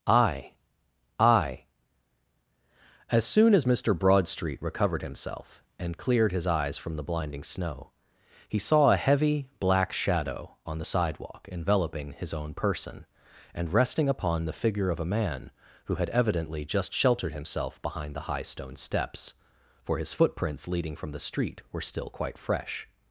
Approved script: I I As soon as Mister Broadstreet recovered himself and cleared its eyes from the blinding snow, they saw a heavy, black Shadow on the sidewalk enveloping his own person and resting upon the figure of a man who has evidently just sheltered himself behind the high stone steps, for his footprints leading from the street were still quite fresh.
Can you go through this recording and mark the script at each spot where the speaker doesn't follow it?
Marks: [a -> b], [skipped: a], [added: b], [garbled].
I I As soon as Mister Broadstreet recovered himself and cleared [its -> his] eyes from the blinding snow, [they -> he] saw a heavy, black Shadow on the sidewalk enveloping his own person and resting upon the figure of a man who [has -> had] evidently just sheltered himself behind the high stone steps, for his footprints leading from the street were still quite fresh.